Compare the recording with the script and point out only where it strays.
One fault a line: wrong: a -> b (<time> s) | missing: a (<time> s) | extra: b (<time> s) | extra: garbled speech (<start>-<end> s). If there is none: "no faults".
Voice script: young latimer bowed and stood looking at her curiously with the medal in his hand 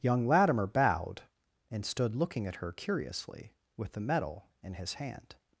no faults